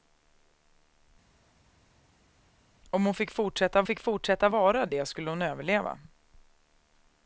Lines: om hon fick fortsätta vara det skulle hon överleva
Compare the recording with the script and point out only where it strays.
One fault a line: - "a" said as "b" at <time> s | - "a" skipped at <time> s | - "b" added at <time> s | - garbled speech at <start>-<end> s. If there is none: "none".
- "fick fortsätta" added at 3.8 s